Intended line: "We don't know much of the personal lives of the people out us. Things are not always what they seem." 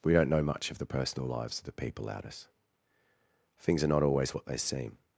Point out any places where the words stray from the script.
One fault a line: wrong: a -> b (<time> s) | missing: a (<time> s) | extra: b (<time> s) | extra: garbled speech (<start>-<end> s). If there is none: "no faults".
no faults